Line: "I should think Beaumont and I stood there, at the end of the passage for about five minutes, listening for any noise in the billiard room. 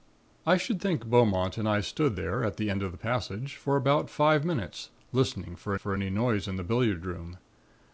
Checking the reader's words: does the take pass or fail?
fail